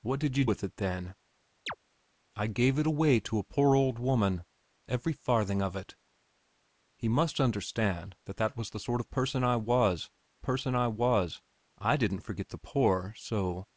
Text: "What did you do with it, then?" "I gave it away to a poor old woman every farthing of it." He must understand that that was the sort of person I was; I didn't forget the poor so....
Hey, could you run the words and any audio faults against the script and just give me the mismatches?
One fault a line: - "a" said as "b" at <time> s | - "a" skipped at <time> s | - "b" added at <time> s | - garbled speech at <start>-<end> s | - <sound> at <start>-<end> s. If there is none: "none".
- "do" skipped at 0.5 s
- chirp at 1.7-1.8 s
- "person I was" added at 10.4 s